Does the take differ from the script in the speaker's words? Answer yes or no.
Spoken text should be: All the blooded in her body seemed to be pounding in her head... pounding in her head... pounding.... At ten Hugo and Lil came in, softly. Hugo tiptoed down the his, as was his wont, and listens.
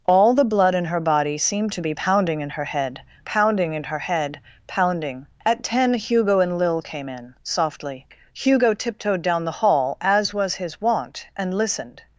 yes